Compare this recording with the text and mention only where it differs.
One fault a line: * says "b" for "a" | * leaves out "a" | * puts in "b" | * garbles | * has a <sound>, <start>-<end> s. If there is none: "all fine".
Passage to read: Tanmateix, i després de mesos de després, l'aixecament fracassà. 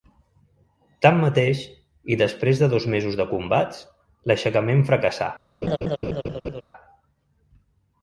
* puts in "dos"
* says "combats" for "després"
* has a laugh, 5.6-6.6 s